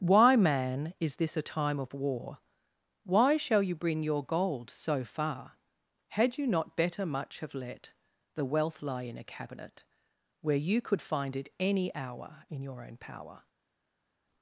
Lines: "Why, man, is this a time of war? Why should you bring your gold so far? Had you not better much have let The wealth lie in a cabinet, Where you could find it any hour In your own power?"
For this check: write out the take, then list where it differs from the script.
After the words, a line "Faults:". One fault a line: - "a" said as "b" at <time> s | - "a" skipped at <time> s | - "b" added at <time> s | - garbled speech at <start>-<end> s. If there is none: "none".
"Why, man, is this a time of war? Why shall you bring your gold so far? Had you not better much have let The wealth lie in a cabinet, Where you could find it any hour In your own power?"
Faults:
- "should" said as "shall" at 3.4 s